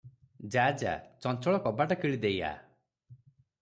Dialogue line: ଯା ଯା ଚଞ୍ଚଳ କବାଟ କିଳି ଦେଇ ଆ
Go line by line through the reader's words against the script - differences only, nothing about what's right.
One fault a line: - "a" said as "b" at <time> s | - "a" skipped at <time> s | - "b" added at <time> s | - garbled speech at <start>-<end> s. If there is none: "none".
none